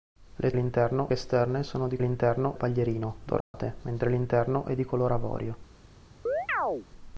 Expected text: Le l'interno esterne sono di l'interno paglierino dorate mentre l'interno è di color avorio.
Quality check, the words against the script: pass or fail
pass